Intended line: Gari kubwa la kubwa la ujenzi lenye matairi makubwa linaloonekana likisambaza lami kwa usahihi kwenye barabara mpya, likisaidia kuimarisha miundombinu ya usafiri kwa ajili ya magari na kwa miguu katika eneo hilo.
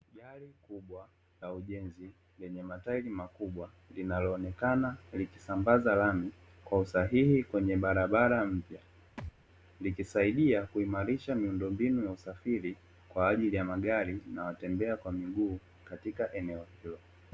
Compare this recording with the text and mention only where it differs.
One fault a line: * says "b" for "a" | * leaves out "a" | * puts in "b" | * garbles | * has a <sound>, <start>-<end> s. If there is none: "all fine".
* leaves out "kubwa la"
* has a thud, 9.2-9.3 s
* puts in "watembea"